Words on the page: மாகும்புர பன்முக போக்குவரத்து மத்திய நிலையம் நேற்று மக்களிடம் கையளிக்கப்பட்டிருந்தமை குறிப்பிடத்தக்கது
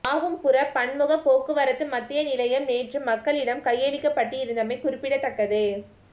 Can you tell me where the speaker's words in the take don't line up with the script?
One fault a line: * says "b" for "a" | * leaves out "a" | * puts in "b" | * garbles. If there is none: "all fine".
all fine